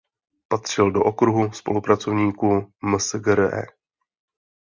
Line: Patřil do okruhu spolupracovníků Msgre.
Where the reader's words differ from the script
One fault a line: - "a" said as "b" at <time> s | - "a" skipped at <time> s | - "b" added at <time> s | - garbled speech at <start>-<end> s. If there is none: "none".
none